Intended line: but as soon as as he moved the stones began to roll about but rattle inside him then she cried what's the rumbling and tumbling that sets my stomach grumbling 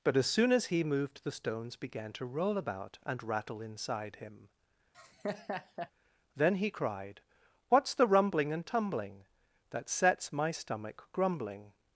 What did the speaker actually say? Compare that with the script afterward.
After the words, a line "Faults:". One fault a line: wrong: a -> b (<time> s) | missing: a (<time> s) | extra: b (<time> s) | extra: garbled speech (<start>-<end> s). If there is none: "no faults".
but as soon as he moved the stones began to roll about and rattle inside him then he cried what's the rumbling and tumbling that sets my stomach grumbling
Faults:
missing: as (0.7 s)
wrong: but -> and (3.0 s)
wrong: she -> he (6.6 s)